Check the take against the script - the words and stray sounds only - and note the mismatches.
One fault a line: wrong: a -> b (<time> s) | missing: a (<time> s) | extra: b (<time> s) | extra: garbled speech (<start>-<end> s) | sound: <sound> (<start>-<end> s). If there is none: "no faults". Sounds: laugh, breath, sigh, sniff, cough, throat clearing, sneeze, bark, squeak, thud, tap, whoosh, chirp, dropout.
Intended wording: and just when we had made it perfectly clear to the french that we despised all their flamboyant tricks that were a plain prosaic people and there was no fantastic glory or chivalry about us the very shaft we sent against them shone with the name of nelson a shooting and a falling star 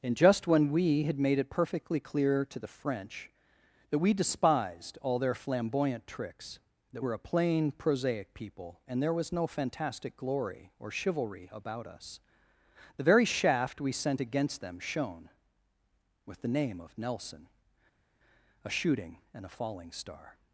no faults